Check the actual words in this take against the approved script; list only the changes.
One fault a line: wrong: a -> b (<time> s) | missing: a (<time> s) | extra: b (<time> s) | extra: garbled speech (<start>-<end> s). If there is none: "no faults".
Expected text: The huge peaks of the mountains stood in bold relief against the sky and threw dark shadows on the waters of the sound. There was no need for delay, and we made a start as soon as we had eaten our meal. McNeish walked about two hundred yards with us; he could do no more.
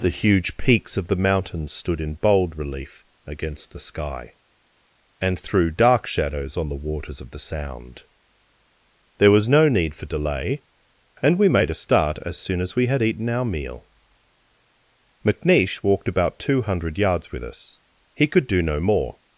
no faults